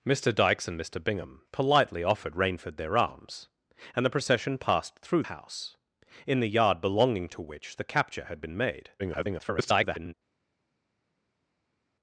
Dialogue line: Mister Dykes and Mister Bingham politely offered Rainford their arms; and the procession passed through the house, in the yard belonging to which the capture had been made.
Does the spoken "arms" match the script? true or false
true